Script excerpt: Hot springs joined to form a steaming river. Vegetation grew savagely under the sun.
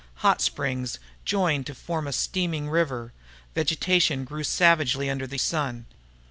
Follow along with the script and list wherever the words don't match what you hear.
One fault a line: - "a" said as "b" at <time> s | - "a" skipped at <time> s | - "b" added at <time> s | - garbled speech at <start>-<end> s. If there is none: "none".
none